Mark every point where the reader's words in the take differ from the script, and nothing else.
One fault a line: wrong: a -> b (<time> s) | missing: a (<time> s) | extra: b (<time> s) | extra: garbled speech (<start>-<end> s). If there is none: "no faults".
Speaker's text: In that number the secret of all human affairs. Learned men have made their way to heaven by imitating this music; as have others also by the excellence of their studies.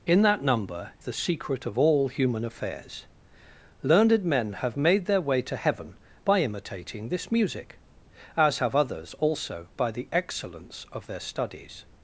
no faults